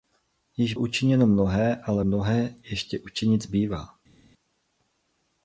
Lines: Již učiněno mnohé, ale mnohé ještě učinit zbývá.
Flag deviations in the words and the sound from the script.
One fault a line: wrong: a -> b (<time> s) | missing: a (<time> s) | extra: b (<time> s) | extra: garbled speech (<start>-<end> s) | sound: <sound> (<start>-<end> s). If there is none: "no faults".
no faults